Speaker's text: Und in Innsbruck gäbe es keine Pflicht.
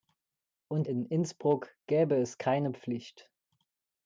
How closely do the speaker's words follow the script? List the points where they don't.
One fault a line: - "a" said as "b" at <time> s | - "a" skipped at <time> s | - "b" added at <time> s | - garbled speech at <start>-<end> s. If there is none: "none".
none